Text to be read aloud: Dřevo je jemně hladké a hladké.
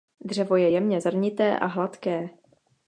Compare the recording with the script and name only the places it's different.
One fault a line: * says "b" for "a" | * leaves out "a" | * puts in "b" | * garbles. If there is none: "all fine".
* says "zrnité" for "hladké"